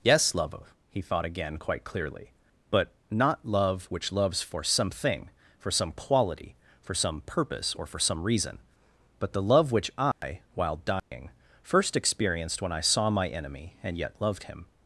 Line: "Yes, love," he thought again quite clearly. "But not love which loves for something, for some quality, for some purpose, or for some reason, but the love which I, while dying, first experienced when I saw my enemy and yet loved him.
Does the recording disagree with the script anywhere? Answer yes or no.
no